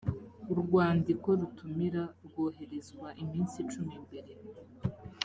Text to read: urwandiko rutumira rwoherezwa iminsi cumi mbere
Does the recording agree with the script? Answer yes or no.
yes